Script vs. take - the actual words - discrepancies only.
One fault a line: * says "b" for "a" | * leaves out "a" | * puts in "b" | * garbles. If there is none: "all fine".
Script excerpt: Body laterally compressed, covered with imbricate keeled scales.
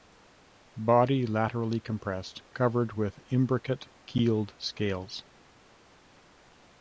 all fine